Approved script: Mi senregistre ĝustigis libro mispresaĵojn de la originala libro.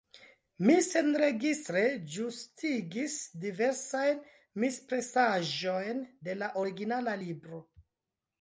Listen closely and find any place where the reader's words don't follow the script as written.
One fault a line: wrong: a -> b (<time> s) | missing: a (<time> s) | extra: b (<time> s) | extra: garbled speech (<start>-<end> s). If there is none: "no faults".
wrong: libro -> diversajn (3.5 s)